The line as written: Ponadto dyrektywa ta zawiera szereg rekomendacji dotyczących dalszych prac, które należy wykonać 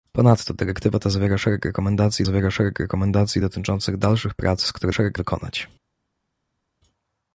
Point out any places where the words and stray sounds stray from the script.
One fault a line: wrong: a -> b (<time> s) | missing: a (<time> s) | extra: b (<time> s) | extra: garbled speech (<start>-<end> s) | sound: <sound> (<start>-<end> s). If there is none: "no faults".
extra: zawiera szereg rekomendacji (2.2 s)
wrong: należy -> szereg (4.9 s)